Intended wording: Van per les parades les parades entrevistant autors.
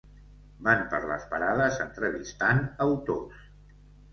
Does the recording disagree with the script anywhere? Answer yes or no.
yes